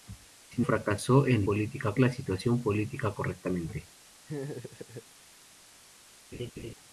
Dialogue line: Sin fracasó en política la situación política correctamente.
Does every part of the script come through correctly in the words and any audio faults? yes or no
no